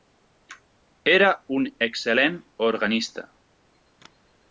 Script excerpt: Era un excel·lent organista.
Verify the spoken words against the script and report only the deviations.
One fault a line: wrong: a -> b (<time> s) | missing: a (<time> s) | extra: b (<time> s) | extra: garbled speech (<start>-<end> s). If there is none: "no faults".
no faults